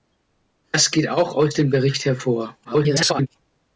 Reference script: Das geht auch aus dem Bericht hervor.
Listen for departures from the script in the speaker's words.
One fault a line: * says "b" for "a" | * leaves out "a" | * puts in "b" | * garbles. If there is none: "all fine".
* garbles